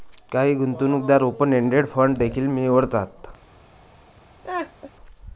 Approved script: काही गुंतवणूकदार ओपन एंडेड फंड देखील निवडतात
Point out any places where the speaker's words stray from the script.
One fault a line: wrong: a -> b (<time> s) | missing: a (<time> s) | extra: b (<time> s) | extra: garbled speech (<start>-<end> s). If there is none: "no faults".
no faults